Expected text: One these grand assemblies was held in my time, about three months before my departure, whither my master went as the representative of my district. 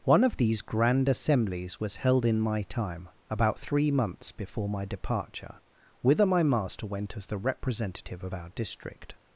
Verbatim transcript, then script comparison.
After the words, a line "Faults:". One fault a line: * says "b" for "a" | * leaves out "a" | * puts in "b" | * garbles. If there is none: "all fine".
One of these grand assemblies was held in my time, about three months before my departure, whither my master went as the representative of our district.
Faults:
* puts in "of"
* says "our" for "my"